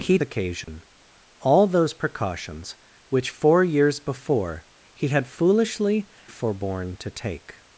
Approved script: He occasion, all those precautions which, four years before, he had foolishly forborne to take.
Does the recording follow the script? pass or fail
pass